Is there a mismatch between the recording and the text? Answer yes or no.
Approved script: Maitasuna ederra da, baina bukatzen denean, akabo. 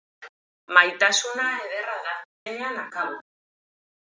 yes